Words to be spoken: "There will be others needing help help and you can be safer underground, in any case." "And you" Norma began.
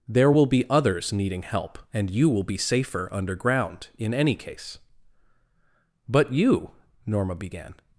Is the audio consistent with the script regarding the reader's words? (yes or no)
no